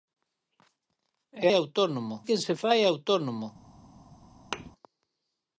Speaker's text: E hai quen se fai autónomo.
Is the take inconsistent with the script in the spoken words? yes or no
yes